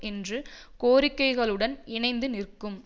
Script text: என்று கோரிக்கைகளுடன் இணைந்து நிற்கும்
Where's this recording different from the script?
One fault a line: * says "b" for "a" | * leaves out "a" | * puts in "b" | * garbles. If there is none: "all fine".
all fine